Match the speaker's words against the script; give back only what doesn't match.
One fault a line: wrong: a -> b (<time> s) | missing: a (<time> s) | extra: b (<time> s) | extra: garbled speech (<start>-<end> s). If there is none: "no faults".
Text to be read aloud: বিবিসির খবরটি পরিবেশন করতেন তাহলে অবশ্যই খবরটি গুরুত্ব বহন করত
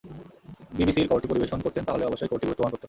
no faults